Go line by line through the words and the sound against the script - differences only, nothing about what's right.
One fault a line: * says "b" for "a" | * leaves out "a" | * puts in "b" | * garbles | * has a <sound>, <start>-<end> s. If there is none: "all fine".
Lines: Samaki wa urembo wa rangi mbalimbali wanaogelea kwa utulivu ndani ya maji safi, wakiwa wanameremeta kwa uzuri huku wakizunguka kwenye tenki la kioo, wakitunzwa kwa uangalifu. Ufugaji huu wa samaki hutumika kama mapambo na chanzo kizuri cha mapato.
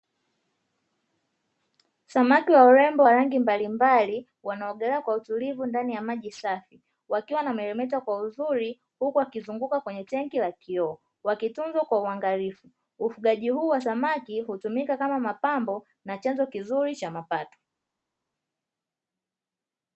all fine